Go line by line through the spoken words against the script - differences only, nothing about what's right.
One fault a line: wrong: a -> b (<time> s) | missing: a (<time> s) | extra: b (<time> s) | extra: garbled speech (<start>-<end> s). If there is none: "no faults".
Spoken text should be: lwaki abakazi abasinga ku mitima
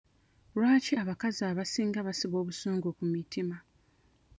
extra: basiba obusungu (2.1 s)